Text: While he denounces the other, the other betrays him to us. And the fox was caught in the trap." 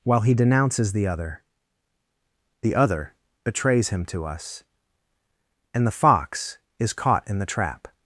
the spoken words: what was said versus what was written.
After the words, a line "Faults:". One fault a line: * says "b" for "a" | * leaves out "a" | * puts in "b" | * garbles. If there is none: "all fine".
While he denounces the other, the other betrays him to us. And the fox is caught in the trap."
Faults:
* says "is" for "was"